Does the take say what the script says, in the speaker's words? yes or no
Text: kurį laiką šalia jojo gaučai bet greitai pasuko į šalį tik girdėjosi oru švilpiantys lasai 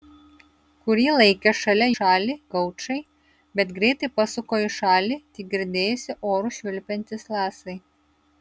no